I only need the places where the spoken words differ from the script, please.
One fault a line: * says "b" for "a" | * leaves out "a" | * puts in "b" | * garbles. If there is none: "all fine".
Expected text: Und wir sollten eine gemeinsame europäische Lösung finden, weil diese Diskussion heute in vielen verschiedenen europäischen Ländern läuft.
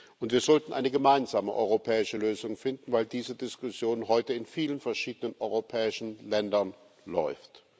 all fine